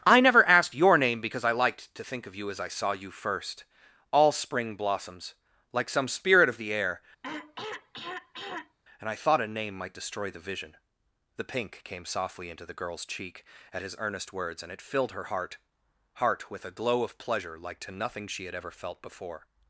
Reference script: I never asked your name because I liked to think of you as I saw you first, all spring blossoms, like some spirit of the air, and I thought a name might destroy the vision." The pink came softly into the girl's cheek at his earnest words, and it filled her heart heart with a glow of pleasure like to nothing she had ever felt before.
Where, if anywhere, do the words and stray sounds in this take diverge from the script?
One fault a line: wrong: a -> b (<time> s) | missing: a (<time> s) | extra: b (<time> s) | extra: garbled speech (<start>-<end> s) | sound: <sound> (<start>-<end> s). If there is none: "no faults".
sound: throat clearing (7.2-8.8 s)